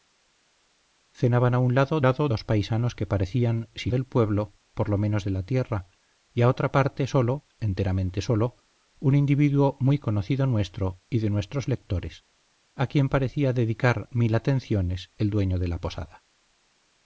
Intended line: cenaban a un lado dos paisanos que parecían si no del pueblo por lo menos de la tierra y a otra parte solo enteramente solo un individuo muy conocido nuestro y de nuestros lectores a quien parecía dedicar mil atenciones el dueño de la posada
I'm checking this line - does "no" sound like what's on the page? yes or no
no